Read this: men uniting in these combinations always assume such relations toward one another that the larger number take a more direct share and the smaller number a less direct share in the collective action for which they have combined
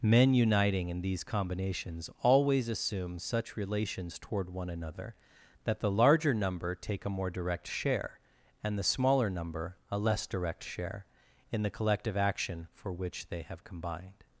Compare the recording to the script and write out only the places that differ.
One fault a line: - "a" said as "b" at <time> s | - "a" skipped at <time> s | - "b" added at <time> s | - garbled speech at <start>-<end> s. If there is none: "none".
none